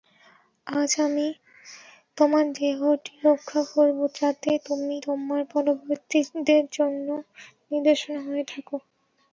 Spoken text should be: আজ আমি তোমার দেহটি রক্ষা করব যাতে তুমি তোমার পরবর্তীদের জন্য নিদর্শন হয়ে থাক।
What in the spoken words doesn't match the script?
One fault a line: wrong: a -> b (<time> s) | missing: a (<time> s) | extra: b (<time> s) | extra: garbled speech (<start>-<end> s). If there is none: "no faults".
no faults